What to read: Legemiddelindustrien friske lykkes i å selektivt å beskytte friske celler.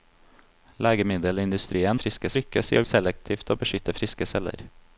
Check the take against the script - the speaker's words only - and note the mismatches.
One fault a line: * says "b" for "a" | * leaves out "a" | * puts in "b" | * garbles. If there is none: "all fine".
all fine